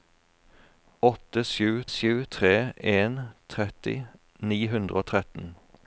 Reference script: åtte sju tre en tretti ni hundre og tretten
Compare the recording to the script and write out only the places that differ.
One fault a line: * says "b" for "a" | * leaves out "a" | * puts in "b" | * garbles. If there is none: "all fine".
* puts in "sju"